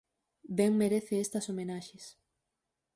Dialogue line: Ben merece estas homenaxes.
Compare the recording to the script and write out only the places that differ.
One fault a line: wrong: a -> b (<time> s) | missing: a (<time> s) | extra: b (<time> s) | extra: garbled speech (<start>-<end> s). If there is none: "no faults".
no faults